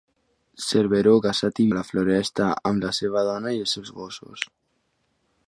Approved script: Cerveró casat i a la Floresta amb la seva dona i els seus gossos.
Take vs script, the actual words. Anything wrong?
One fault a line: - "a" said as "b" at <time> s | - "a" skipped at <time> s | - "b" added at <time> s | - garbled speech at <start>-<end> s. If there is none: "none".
none